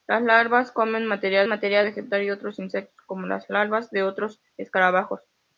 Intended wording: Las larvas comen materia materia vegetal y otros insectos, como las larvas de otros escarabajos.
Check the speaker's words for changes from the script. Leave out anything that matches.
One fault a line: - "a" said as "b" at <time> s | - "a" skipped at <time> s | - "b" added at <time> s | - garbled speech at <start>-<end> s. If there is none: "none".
none